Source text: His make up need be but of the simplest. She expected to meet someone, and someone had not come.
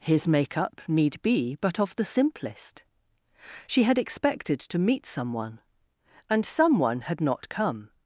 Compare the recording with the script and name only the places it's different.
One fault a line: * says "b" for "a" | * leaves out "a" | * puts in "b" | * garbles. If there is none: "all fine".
* puts in "had"